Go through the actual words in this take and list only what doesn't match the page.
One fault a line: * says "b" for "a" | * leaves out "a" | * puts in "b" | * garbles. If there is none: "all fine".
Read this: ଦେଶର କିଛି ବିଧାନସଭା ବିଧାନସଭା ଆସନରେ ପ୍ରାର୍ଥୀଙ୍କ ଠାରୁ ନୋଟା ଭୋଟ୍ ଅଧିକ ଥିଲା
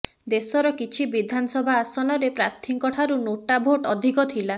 * leaves out "ବିଧାନସଭା"